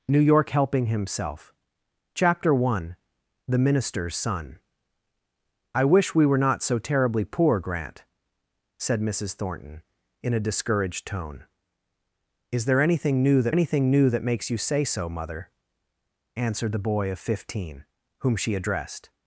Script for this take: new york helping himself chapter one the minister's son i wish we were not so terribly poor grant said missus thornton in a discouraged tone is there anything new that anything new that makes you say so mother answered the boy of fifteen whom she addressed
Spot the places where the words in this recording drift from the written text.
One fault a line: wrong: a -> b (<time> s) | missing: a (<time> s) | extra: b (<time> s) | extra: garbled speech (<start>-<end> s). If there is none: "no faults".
no faults